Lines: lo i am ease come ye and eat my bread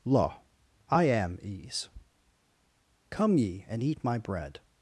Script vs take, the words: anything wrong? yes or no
no